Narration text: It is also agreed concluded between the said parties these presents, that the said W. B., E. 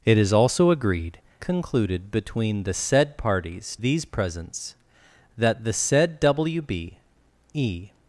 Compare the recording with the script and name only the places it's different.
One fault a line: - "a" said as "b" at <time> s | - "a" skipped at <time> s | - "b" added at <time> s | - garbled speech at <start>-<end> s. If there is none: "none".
none